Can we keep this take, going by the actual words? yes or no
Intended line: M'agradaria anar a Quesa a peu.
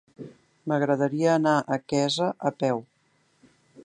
yes